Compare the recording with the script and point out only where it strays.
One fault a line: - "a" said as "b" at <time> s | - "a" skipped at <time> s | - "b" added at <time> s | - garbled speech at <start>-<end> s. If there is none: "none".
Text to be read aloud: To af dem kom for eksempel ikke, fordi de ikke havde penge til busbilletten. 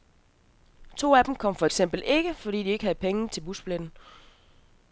none